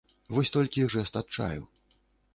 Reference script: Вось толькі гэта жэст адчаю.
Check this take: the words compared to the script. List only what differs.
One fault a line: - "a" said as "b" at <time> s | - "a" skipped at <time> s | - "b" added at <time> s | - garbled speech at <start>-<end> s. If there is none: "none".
- "гэта" skipped at 0.8 s